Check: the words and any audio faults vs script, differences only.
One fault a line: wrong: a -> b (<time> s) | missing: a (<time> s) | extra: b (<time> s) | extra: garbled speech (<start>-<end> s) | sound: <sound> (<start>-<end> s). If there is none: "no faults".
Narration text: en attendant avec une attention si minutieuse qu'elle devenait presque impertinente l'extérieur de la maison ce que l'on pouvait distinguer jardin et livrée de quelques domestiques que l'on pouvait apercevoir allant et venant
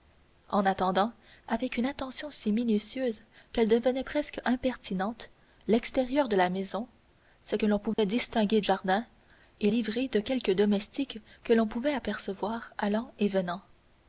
sound: dropout (7.9-8.0 s)